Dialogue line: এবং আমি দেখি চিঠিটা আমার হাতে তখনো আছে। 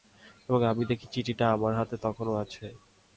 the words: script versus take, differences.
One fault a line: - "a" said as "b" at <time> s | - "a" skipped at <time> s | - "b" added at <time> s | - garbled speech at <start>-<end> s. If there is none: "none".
none